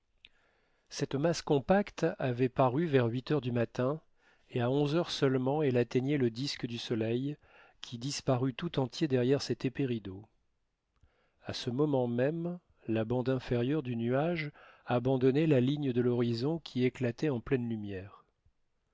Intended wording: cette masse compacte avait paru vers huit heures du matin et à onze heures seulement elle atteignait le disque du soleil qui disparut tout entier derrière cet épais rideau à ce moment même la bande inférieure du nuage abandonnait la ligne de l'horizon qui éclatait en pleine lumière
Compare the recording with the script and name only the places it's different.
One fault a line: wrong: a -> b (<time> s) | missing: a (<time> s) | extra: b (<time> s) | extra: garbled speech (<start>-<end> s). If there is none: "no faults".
no faults